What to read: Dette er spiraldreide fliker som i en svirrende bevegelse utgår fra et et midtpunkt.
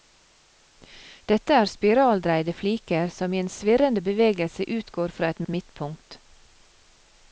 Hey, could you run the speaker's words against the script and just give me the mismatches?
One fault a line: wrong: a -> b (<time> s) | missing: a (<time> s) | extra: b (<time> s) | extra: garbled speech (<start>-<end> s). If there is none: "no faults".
no faults